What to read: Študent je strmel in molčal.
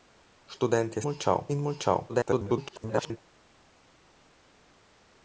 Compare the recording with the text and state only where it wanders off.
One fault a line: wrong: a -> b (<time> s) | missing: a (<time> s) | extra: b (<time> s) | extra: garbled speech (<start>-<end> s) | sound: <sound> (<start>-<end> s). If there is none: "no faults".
wrong: strmel -> molčal (1.0 s)
extra: garbled speech (2.1-3.2 s)